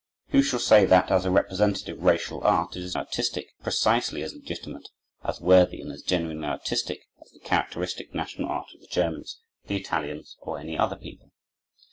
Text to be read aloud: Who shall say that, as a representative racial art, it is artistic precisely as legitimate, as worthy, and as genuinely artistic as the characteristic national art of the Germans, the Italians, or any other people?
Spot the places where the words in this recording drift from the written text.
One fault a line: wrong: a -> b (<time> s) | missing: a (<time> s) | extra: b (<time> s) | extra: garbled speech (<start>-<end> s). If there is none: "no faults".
no faults